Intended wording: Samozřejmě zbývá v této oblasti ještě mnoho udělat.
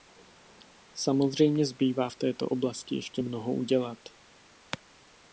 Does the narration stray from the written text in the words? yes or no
no